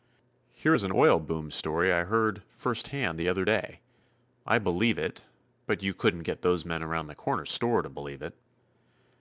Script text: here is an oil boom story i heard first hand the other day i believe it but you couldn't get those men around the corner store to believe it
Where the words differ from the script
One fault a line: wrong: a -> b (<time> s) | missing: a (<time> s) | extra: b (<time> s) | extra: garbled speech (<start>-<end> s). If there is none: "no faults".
no faults